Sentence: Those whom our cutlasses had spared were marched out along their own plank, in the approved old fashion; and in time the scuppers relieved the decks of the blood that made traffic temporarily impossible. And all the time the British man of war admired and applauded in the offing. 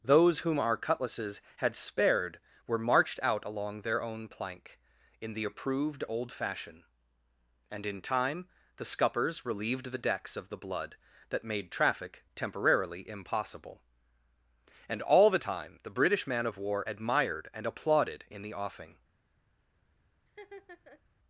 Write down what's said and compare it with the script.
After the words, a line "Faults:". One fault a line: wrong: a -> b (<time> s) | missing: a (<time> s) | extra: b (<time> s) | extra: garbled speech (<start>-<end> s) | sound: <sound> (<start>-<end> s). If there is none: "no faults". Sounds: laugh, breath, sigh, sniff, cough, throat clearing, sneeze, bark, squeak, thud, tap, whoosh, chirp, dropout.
Those whom our cutlasses had spared were marched out along their own plank, in the approved old fashion; and in time the scuppers relieved the decks of the blood that made traffic temporarily impossible. And all the time the British man of war admired and applauded in the offing.
Faults:
sound: laugh (20.3-21.0 s)